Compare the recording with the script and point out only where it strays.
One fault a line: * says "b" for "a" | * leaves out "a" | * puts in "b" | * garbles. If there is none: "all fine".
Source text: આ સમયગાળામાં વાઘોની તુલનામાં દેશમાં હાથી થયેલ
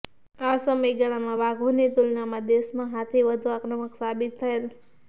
* puts in "વધુ આક્રમક સાબિત"